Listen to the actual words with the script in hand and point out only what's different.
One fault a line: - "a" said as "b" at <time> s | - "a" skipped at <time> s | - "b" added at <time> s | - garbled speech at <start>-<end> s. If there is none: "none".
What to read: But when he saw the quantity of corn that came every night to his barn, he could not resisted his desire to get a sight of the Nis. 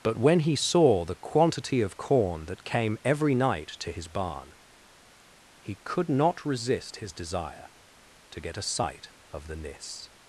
- "resisted" said as "resist" at 6.5 s